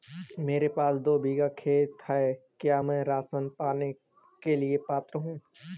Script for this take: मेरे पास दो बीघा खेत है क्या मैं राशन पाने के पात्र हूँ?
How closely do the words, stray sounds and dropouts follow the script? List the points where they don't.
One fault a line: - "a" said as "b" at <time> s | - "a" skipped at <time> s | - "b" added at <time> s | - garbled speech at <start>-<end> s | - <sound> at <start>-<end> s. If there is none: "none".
- "लिए" added at 4.6 s